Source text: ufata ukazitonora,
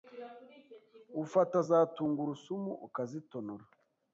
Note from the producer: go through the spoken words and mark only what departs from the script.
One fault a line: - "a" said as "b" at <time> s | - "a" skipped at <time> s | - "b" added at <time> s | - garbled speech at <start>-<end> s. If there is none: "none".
- "za tungurusumu" added at 1.7 s